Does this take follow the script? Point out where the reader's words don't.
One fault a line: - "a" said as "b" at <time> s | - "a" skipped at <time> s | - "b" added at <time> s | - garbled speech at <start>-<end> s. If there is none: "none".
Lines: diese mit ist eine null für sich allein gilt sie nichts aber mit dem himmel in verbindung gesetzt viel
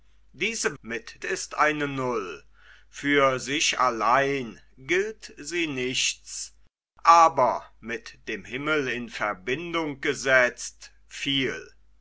none